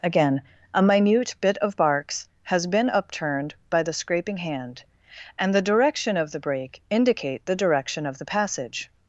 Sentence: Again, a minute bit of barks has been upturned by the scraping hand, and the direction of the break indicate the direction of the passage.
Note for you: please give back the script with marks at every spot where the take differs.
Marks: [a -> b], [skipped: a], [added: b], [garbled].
Again, a minute bit of barks has been upturned by the scraping hand, and the direction of the break indicate the direction of the passage.